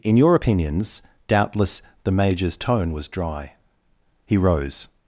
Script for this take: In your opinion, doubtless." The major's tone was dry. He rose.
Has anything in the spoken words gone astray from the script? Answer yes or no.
yes